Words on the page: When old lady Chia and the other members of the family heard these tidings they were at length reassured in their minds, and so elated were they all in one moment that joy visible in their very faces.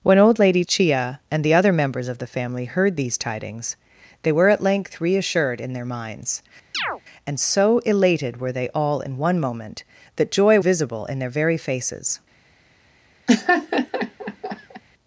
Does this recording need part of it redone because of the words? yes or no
no